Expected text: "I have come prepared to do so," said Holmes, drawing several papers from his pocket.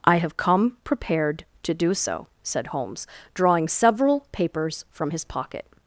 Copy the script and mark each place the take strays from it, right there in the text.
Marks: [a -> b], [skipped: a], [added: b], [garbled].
"I have come prepared to do so," said Holmes, drawing several papers from his pocket.